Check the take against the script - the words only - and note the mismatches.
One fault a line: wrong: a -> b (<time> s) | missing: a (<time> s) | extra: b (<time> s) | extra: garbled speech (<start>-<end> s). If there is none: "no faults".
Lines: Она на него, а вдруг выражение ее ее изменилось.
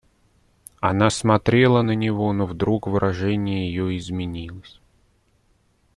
extra: смотрела (1.1 s)
wrong: а -> но (2.3 s)
missing: ее (4.0 s)